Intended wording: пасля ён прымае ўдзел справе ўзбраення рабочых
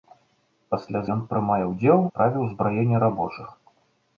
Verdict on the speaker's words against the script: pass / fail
pass